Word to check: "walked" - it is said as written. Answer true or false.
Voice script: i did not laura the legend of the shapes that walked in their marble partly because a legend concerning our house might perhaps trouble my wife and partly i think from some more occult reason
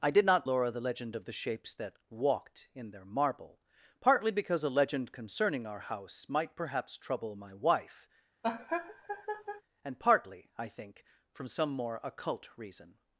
true